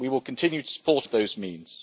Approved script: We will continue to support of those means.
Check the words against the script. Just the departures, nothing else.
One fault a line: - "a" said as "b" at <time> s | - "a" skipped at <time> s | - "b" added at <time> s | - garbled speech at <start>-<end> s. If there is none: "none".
none